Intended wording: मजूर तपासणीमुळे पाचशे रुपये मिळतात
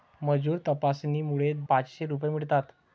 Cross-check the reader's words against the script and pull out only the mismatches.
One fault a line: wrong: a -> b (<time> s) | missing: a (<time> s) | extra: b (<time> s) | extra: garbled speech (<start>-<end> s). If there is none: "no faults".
no faults